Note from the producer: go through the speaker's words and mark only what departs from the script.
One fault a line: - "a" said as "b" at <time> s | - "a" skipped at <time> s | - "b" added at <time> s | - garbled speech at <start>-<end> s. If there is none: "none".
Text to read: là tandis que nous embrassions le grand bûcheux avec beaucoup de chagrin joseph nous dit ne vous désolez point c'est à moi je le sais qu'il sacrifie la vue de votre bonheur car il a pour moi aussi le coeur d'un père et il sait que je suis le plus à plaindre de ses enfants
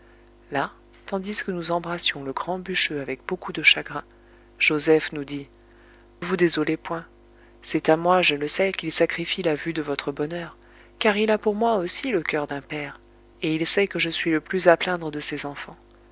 - "ne" skipped at 5.5 s